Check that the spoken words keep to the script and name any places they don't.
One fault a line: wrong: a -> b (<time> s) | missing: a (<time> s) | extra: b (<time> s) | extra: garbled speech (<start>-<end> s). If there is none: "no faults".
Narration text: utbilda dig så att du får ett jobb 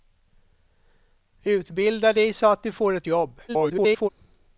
extra: garbled speech (3.5-4.1 s)